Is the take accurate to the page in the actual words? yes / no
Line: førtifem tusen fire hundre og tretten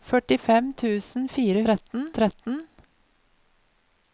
no